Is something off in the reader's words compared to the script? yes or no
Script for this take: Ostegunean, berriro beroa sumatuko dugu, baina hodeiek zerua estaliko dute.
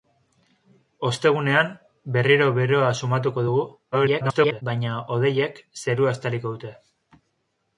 yes